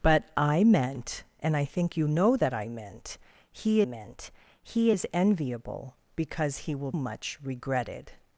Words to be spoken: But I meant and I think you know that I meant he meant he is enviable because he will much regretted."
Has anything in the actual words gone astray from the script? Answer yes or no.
no